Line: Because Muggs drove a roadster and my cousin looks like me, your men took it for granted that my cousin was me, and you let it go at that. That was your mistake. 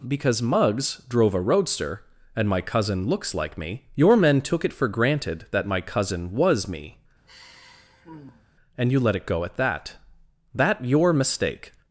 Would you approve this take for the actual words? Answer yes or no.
no